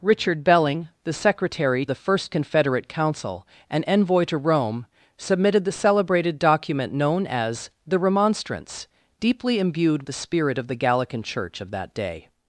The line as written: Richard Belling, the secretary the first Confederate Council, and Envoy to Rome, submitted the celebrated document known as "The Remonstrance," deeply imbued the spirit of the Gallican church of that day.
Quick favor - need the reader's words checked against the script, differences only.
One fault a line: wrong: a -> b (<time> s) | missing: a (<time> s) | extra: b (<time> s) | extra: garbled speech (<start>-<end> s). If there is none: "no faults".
no faults